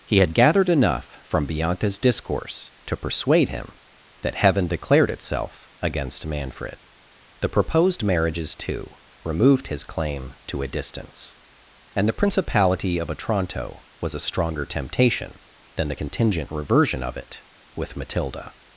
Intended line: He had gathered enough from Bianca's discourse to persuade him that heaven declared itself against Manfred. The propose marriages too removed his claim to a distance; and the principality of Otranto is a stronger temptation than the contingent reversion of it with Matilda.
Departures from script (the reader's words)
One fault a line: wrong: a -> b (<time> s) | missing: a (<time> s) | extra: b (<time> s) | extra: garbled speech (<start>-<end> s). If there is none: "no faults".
wrong: propose -> proposed (7.5 s)
wrong: is -> was (14.0 s)